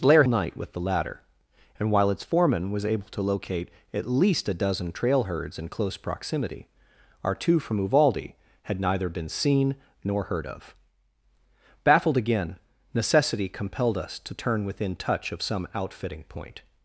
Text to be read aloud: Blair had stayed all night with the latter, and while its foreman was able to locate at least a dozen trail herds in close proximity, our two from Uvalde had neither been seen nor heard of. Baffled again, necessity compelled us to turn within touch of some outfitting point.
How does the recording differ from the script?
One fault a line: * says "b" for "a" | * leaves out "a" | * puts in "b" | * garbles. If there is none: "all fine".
* leaves out "had stayed all"